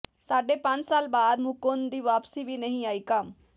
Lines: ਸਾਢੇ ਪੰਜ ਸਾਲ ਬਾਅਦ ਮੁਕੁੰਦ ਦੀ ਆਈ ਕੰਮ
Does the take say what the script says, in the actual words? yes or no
no